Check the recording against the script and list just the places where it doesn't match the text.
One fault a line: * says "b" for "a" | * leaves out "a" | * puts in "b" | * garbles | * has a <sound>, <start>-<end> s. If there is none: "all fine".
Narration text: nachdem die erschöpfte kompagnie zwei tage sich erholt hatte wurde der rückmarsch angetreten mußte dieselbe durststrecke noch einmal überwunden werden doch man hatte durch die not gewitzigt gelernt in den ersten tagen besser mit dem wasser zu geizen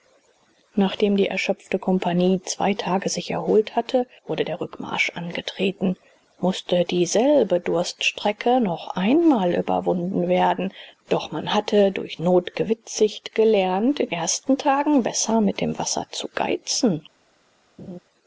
* leaves out "die"
* leaves out "den"
* has a laugh, 17.8-18.0 s